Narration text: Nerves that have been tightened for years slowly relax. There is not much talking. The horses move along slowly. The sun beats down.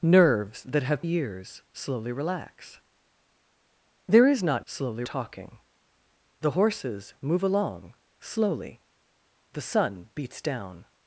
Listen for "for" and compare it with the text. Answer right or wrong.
wrong